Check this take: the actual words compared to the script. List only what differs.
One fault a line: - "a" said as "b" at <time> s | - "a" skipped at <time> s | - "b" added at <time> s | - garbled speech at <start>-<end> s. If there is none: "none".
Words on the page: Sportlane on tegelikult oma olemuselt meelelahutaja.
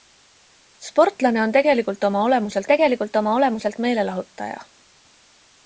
- "tegelikult oma olemuselt" added at 2.7 s